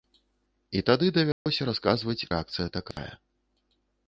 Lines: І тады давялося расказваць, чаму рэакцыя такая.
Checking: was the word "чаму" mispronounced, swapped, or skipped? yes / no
yes